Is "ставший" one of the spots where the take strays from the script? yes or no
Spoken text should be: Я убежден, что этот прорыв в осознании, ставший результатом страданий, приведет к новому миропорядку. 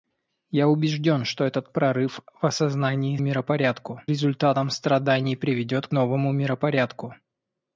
yes